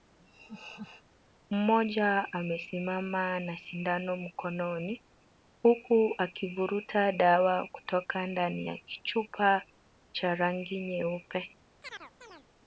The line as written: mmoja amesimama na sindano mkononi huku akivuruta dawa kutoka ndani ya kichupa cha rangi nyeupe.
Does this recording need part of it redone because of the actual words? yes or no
no